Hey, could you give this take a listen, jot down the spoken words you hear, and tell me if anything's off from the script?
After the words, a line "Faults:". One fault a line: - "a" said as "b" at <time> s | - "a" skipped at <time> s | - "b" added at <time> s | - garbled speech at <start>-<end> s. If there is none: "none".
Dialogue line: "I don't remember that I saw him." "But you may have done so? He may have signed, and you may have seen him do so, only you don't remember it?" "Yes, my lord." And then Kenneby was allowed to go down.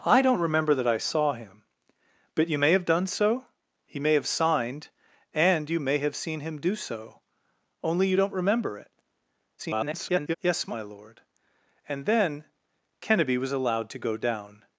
"I don't remember that I saw him." "But you may have done so? He may have signed, and you may have seen him do so, only you don't remember it?" [garbled] "Yes, my lord." And then Kenneby was allowed to go down.
Faults:
- garbled speech at 9.6-10.4 s